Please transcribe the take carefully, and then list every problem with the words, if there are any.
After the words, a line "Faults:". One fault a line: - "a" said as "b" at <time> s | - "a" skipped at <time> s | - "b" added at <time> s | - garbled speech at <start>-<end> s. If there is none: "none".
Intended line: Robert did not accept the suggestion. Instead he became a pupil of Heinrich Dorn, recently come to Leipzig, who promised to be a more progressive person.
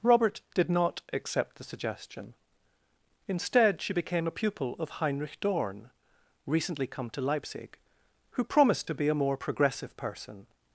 Robert did not accept the suggestion. Instead she became a pupil of Heinrich Dorn, recently come to Leipzig, who promised to be a more progressive person.
Faults:
- "he" said as "she" at 3.8 s